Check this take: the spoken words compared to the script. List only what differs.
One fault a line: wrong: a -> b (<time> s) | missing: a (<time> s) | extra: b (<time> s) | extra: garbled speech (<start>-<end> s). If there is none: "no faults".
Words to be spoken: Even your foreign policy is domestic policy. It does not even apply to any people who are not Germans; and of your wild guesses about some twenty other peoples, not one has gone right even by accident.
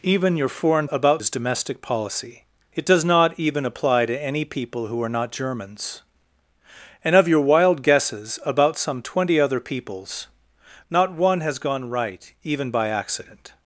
wrong: policy -> about (0.9 s)